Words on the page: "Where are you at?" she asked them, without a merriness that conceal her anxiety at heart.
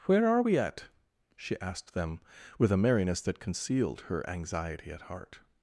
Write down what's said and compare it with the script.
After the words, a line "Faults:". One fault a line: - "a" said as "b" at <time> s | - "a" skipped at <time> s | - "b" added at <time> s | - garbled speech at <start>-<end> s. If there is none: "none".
"Where are we at?" she asked them, with a merriness that concealed her anxiety at heart.
Faults:
- "you" said as "we" at 0.4 s
- "without" said as "with" at 2.6 s
- "conceal" said as "concealed" at 3.4 s